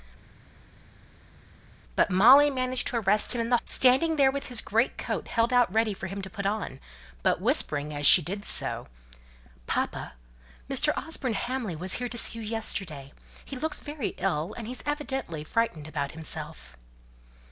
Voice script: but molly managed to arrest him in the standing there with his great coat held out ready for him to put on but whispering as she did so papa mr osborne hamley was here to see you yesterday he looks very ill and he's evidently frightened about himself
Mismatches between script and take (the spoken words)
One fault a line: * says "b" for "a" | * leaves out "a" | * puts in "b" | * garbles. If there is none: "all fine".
all fine